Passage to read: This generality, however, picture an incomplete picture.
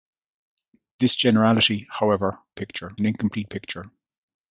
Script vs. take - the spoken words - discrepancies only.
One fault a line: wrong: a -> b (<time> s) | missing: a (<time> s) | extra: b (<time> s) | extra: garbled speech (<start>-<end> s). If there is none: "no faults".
no faults